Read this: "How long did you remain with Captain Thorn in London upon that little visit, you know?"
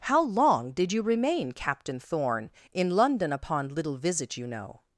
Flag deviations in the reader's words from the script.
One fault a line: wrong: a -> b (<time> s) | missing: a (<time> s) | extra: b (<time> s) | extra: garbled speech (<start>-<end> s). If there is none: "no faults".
missing: with (1.5 s)
missing: that (3.7 s)